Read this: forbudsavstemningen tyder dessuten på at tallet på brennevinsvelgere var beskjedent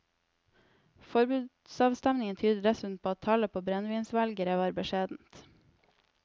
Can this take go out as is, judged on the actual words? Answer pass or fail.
pass